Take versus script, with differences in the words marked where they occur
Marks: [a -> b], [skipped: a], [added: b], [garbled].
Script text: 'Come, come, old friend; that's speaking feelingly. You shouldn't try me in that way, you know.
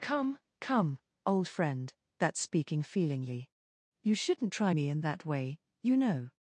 'Come, come, old friend; that's speaking feelingly. You shouldn't try me in that way, you know.